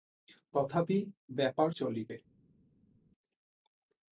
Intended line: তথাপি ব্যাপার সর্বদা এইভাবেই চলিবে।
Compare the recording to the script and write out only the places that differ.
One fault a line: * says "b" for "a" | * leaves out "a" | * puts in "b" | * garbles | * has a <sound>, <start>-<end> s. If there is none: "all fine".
* leaves out "সর্বদা এইভাবেই"